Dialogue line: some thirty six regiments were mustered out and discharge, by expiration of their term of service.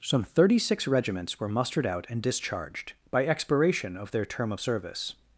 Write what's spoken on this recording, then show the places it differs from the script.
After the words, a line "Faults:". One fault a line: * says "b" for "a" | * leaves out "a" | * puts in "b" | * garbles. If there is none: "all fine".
some thirty six regiments were mustered out and discharged, by expiration of their term of service.
Faults:
* says "discharged" for "discharge"